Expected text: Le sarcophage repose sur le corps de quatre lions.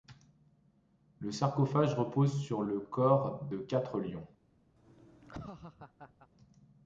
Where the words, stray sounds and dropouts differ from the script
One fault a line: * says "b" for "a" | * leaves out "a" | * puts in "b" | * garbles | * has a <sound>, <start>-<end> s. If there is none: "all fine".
* has a laugh, 4.8-6.3 s